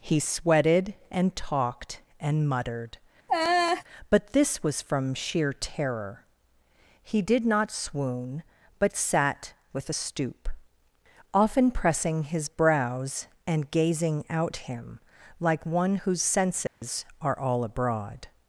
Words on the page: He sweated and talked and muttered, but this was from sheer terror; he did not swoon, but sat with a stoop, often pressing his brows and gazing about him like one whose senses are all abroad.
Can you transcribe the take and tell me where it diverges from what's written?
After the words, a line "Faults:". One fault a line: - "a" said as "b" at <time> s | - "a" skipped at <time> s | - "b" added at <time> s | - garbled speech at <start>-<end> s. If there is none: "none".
He sweated and talked and muttered, but this was from sheer terror; he did not swoon, but sat with a stoop, often pressing his brows and gazing out him like one whose senses are all abroad.
Faults:
- "about" said as "out" at 14.3 s